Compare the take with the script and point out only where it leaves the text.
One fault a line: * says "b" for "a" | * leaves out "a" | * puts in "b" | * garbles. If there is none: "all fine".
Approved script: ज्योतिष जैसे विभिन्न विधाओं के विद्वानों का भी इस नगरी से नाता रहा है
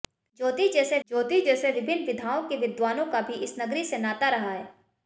* puts in "ज्योतिष जैसे"